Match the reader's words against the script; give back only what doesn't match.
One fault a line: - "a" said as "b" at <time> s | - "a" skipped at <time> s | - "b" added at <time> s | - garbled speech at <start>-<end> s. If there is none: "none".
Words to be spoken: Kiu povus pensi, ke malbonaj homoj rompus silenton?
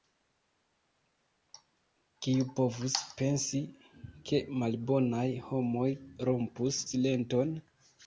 none